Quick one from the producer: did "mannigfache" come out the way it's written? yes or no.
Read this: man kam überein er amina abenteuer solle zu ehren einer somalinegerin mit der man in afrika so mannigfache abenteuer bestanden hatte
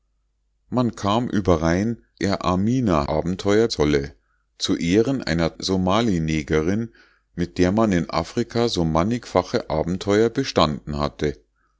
yes